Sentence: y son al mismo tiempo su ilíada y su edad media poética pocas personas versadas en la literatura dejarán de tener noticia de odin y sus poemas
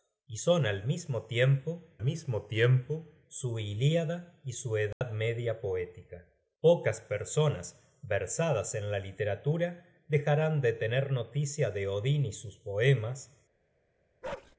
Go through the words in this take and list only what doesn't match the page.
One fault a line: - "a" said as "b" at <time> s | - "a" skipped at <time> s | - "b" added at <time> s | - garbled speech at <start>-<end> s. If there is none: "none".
- "mismo tiempo" added at 2.0 s